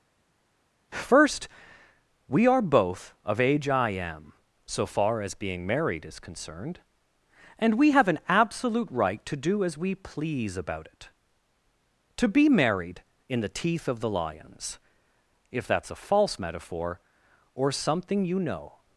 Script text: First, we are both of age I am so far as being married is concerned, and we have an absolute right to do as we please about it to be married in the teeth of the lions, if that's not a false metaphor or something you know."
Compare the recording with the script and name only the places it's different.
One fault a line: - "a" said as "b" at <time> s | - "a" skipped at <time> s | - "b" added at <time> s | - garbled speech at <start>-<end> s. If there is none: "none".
- "not" skipped at 15.9 s